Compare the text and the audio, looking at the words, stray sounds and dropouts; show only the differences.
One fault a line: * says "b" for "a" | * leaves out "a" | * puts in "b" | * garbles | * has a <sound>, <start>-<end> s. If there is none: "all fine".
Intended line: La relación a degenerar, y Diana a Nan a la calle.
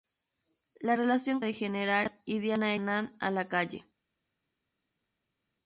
all fine